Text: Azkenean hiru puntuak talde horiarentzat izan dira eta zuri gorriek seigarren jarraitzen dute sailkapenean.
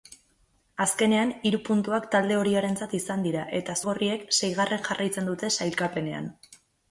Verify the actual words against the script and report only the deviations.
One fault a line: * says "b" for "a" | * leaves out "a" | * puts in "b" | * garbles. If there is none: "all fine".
* leaves out "zuri"